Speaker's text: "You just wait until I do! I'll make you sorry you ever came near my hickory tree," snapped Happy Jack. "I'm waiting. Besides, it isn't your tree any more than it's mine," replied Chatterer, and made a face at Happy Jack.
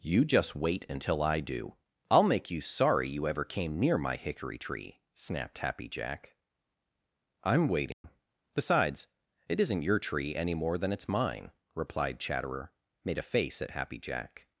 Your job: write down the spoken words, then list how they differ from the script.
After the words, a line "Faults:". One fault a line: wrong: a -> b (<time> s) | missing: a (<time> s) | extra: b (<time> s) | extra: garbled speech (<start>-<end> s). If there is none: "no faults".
"You just wait until I do! I'll make you sorry you ever came near my hickory tree," snapped Happy Jack. "I'm waiting. Besides, it isn't your tree any more than it's mine," replied Chatterer, made a face at Happy Jack.
Faults:
missing: and (12.7 s)